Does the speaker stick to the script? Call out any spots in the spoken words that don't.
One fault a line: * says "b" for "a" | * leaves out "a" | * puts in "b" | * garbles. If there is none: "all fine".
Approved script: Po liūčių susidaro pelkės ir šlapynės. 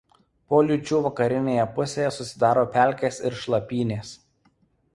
* puts in "vakarinėje pusėje"